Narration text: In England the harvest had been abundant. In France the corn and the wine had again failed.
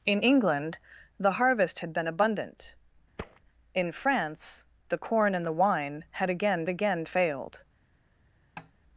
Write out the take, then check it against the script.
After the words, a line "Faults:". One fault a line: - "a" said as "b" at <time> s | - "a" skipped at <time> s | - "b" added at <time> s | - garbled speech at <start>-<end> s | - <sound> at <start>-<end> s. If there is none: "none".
In England the harvest had been abundant. In France the corn and the wine had again again failed.
Faults:
- thud at 3.2-3.4 s
- "again" added at 6.7 s
- tap at 8.6-8.7 s